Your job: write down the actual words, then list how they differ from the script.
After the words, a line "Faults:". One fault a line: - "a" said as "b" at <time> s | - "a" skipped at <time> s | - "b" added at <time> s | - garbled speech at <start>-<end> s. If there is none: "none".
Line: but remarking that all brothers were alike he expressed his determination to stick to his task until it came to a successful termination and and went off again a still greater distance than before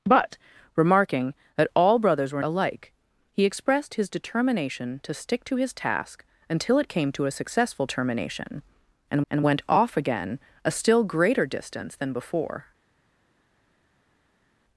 but remarking that all brothers were alike he expressed his determination to stick to his task until it came to a successful termination and and went off again a still greater distance than before
Faults:
none